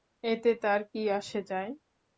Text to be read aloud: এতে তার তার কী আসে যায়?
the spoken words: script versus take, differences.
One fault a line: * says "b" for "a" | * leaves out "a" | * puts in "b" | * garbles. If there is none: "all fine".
* leaves out "তার"